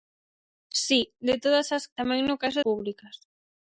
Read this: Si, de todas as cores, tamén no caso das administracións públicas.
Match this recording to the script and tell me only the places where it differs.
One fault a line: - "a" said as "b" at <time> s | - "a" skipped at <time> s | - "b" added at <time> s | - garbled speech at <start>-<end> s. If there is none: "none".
- "cores" skipped at 1.9 s
- "das administracións" skipped at 2.6 s